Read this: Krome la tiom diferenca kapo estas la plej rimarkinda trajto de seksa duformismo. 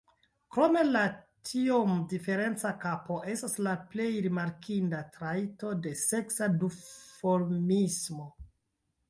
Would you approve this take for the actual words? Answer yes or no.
yes